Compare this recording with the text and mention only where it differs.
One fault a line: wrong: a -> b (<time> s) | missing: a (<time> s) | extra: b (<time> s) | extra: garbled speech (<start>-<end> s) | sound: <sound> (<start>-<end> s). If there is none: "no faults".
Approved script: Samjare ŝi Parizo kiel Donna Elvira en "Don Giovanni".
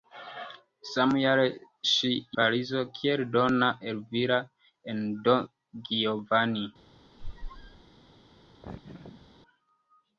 sound: squeak (7.2-7.8 s)
sound: laugh (8.6-9.3 s)